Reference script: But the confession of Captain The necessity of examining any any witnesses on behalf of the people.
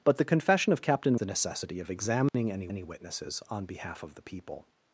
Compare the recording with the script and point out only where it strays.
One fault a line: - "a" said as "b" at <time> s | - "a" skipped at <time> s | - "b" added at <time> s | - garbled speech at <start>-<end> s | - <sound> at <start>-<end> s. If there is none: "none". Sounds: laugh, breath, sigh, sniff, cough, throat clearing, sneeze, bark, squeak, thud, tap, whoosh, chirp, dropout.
- dropout at 2.3-2.3 s